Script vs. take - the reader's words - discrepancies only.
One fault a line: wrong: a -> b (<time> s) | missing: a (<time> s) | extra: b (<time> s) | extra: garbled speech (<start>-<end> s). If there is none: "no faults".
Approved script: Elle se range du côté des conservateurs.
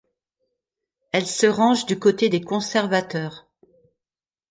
no faults